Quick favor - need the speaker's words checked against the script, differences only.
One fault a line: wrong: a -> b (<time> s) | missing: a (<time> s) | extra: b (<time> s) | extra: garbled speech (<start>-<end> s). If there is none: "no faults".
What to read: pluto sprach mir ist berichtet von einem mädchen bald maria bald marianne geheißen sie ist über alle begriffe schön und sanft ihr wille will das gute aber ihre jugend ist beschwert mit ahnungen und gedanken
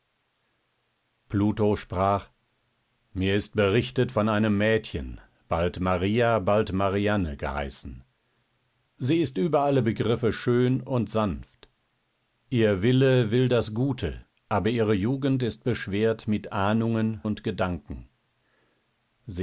no faults